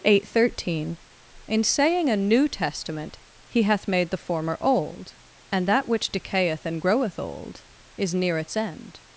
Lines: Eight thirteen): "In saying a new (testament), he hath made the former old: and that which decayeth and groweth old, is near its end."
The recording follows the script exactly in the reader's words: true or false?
true